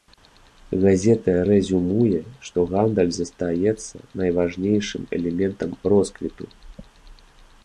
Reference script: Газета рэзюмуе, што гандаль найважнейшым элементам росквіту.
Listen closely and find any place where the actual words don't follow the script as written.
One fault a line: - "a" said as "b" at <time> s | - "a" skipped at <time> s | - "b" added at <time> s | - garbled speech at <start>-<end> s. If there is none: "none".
- "застаецца" added at 3.2 s